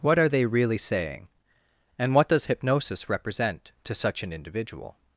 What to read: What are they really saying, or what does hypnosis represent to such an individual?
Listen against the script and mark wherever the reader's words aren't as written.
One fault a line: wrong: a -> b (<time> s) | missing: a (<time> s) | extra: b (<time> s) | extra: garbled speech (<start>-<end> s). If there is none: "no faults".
wrong: or -> and (2.0 s)